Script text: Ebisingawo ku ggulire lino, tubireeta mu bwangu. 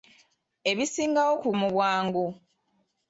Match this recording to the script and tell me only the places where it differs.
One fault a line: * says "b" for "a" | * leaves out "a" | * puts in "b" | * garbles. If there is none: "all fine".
* leaves out "ggulire lino tubireeta"